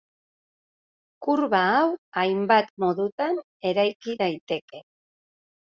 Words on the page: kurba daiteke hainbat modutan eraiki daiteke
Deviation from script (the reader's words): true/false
true